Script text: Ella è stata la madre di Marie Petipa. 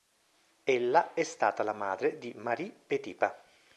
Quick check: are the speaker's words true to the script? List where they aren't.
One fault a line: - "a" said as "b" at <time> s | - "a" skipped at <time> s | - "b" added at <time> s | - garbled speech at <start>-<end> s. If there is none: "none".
none